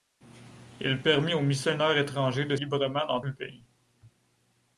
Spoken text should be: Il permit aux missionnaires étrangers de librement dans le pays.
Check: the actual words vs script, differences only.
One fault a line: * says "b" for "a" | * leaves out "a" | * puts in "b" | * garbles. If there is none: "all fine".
all fine